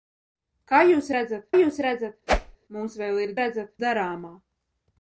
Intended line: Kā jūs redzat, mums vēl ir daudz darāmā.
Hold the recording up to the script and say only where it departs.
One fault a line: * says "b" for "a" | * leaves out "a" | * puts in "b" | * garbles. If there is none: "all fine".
* puts in "jūs redzat"
* says "redzat" for "daudz"